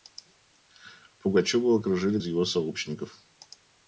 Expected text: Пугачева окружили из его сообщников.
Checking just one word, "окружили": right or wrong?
right